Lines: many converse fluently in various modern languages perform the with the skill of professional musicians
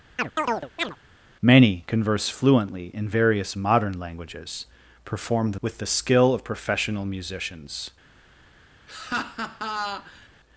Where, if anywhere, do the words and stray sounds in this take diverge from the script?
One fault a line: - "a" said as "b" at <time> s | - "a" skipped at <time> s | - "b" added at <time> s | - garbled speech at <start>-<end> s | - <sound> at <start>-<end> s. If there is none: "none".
- chirp at 0.2-1.0 s
- laugh at 8.9-10.3 s